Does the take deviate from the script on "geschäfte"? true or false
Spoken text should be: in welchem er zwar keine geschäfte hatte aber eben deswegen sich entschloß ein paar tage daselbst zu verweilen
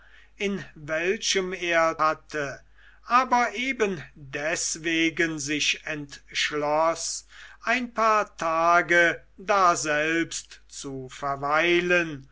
true